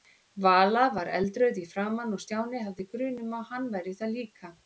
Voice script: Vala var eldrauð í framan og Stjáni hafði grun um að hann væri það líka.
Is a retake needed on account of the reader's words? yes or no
no